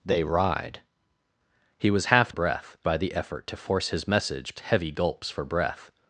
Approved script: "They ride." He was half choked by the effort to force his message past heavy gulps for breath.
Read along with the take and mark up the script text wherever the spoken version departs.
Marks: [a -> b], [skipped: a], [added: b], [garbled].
"They ride." He was half [choked -> breath] by the effort to force his message [skipped: past] heavy gulps for breath.